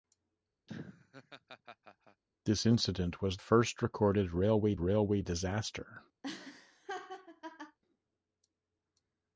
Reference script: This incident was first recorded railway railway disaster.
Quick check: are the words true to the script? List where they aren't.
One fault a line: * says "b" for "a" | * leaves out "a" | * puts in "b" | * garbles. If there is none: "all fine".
all fine